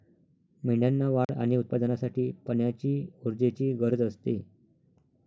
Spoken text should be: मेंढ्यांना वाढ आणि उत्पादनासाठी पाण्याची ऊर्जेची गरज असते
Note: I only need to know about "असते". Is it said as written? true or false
true